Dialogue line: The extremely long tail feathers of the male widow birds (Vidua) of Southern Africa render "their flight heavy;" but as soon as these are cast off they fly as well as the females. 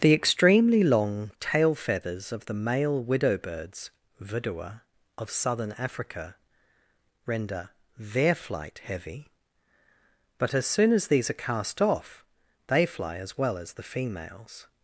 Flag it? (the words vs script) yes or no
no